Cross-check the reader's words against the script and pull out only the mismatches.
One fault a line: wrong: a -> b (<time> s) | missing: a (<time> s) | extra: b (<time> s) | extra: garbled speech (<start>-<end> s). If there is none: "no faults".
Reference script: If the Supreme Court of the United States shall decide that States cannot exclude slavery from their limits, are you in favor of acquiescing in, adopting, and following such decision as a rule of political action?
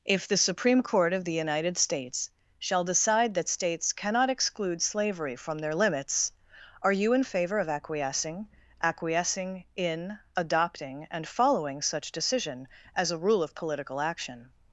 extra: acquiescing (8.8 s)